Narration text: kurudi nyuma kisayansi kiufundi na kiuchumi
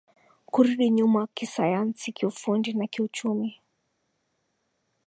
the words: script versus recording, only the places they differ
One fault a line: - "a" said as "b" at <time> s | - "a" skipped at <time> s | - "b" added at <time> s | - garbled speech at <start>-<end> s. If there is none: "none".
none